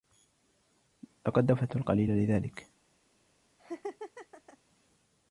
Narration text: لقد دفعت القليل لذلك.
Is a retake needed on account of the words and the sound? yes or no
yes